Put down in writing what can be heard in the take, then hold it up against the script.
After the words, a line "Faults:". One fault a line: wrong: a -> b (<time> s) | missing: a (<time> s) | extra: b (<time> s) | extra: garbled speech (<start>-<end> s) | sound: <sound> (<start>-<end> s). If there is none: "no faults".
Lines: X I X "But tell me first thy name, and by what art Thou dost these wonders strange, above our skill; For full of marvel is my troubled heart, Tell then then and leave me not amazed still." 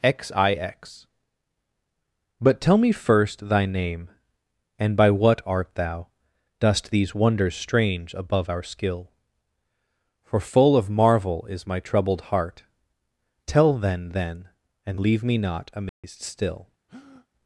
X I X "But tell me first thy name, and by what art Thou dost these wonders strange, above our skill; For full of marvel is my troubled heart, Tell then then and leave me not amazed still."
Faults:
sound: dropout (15.9-16.0 s)
sound: breath (16.9-17.3 s)